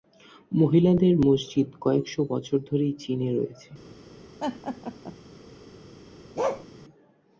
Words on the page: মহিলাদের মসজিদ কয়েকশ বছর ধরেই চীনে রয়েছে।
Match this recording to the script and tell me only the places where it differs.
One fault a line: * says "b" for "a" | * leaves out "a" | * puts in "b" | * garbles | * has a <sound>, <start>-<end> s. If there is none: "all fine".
* has a laugh, 4.4-5.2 s
* has a bark, 6.4-6.7 s